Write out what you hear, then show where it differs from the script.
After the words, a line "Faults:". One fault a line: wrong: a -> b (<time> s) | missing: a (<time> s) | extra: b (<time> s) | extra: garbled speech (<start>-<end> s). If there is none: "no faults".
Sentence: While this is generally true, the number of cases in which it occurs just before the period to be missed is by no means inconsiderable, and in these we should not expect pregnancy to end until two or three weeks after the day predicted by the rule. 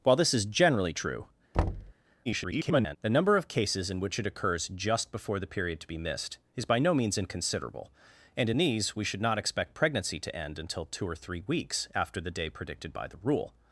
While this is generally true, [garbled] the number of cases in which it occurs just before the period to be missed is by no means inconsiderable, and in these we should not expect pregnancy to end until two or three weeks after the day predicted by the rule.
Faults:
extra: garbled speech (2.3-3.0 s)